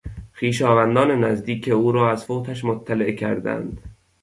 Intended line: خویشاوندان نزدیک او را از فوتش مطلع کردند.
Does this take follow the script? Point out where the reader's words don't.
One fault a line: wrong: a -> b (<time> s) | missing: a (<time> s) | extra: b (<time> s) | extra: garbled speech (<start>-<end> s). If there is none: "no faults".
no faults